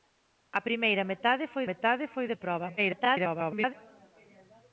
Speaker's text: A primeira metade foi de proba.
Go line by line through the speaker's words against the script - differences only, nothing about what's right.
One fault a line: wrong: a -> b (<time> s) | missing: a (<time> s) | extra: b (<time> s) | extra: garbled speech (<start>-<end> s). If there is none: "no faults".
extra: metade foi (1.7 s)
extra: garbled speech (2.8-3.7 s)